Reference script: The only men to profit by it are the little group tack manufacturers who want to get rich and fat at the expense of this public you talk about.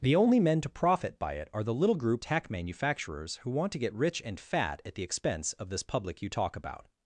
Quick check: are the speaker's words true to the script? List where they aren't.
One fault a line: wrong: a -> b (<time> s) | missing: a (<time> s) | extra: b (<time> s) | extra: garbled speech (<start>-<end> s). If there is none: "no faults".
no faults